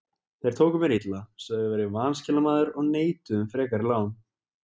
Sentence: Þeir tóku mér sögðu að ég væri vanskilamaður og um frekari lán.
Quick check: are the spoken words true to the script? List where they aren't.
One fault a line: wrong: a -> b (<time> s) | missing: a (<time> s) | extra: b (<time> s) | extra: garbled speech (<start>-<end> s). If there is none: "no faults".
extra: illa (0.9 s)
extra: neituðu (2.9 s)